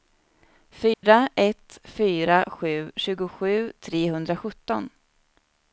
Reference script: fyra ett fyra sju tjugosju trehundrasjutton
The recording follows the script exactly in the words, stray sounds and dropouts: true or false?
false